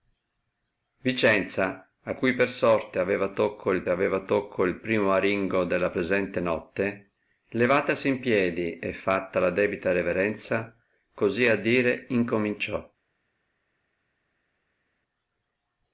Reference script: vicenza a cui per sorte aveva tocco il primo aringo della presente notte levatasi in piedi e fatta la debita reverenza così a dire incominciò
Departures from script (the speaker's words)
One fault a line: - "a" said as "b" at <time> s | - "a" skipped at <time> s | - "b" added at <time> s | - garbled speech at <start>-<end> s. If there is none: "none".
- "aveva tocco il" added at 3.9 s